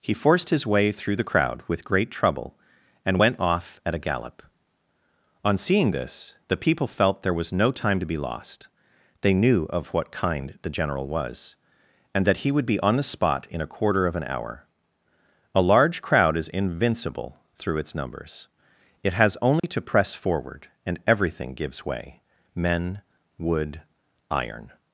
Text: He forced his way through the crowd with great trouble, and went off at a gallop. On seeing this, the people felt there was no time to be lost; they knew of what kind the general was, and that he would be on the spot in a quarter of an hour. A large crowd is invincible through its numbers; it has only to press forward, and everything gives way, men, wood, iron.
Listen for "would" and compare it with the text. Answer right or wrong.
right